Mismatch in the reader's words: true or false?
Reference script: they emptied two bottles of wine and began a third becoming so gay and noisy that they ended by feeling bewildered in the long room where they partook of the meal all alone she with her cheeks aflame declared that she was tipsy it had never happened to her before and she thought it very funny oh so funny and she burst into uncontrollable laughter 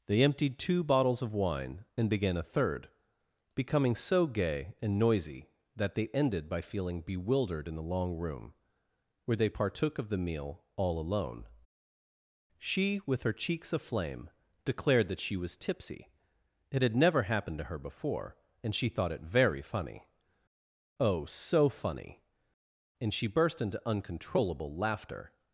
false